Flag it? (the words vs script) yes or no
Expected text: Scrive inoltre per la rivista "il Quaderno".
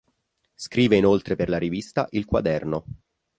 no